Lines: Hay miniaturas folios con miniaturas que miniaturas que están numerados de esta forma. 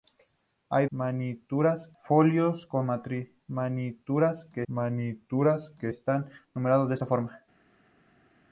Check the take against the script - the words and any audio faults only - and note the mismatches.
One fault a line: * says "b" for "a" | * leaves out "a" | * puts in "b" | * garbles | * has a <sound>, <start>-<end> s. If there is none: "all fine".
all fine